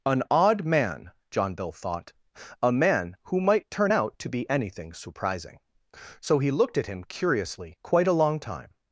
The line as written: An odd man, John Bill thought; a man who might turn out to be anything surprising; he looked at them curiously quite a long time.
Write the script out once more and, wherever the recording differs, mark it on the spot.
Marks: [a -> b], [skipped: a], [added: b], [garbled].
An odd man, John Bill thought; a man who might turn out to be anything surprising; [added: so] he looked at [them -> him] curiously quite a long time.